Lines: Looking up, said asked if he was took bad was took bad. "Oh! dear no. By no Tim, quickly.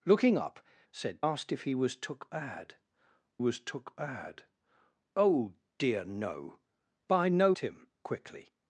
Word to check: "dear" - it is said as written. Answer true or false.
true